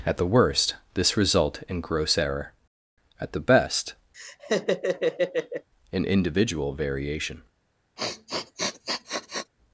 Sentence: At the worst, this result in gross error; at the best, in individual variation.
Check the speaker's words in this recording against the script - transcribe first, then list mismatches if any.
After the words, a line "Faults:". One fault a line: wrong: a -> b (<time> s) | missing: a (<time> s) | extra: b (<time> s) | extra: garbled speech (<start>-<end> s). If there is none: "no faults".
At the worst, this result in gross error; at the best, in individual variation.
Faults:
no faults